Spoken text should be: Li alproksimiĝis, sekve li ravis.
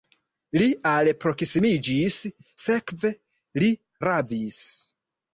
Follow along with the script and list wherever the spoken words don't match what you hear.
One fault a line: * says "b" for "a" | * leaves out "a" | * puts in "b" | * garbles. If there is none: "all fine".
all fine